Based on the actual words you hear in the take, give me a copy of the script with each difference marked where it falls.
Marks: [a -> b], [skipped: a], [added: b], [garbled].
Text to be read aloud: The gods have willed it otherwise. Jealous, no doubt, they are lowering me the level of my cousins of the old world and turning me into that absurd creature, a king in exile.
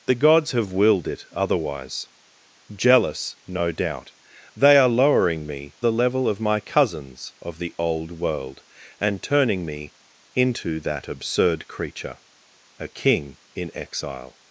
The gods have willed it otherwise. Jealous, no doubt, they are lowering me the level of my cousins of the old world and turning me into that absurd creature, a king in exile.